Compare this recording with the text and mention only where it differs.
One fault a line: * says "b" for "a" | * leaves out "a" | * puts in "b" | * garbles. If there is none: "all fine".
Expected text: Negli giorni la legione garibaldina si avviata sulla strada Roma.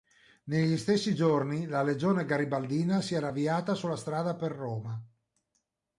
* puts in "stessi"
* puts in "era"
* puts in "per"